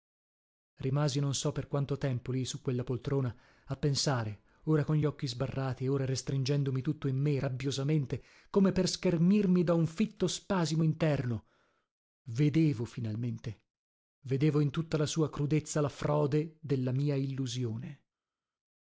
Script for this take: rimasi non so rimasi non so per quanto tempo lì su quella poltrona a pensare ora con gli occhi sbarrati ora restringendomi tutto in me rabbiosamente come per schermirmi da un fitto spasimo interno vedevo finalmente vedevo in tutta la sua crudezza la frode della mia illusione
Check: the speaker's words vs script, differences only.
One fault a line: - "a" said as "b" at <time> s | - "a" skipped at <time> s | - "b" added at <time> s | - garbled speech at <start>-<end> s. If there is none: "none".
- "rimasi non so" skipped at 1.5 s